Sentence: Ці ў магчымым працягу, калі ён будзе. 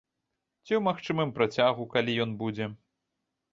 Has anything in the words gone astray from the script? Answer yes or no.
no